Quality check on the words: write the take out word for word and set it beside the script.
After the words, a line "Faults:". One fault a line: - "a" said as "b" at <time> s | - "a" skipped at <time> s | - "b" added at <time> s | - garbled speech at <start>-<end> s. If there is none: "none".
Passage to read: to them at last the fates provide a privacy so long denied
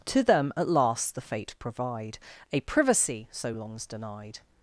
to them at last the fate provide a privacy so longs denied
Faults:
- "fates" said as "fate" at 1.2 s
- "long" said as "longs" at 3.5 s